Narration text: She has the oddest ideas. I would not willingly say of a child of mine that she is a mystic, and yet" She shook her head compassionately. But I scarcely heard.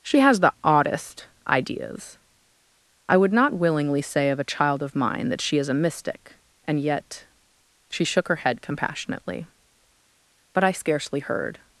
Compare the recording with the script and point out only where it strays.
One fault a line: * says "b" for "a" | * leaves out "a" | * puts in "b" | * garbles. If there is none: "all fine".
all fine